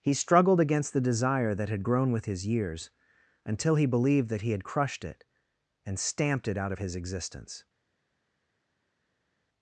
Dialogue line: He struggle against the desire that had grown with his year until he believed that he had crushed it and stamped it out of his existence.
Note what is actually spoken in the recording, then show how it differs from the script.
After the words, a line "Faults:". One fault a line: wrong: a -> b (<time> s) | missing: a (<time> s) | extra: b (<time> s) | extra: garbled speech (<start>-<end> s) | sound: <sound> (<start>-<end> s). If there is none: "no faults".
He struggled against the desire that had grown with his years until he believed that he had crushed it and stamped it out of his existence.
Faults:
wrong: struggle -> struggled (0.1 s)
wrong: year -> years (2.5 s)